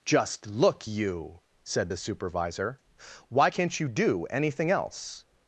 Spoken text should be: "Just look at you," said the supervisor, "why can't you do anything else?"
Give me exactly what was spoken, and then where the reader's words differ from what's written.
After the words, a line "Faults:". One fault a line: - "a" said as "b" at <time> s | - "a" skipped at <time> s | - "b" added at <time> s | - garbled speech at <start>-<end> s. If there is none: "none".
"Just look you," said the supervisor, "why can't you do anything else?"
Faults:
- "at" skipped at 0.9 s